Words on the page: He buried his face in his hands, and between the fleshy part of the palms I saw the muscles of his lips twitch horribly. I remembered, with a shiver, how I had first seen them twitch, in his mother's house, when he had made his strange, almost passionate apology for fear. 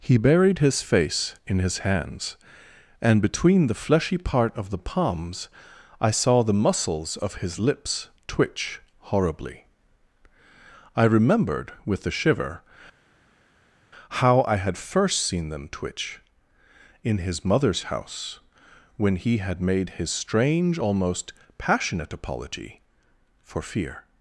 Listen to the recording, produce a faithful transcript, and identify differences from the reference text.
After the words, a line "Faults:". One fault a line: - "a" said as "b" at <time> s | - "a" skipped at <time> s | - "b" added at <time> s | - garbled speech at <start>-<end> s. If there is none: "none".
He buried his face in his hands, and between the fleshy part of the palms I saw the muscles of his lips twitch horribly. I remembered, with a shiver, how I had first seen them twitch, in his mother's house, when he had made his strange, almost passionate apology for fear.
Faults:
none